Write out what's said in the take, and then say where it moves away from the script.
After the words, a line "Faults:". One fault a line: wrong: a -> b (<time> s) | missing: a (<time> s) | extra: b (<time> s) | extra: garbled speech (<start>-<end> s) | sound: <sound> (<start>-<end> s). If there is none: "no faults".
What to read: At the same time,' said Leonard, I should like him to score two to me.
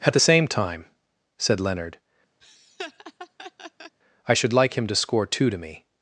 At the same time,' said Leonard, I should like him to score two to me.
Faults:
sound: laugh (2.4-4.0 s)